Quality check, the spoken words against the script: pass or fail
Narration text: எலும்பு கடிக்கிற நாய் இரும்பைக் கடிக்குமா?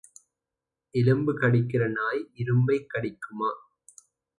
pass